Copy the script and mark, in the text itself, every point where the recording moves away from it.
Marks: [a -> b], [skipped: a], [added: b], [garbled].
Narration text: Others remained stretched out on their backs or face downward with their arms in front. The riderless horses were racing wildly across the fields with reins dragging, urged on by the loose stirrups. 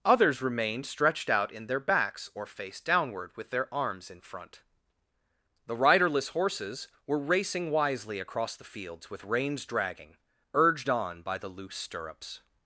Others remained stretched out [on -> in] their backs or face downward with their arms in front. The riderless horses were racing [wildly -> wisely] across the fields with reins dragging, urged on by the loose stirrups.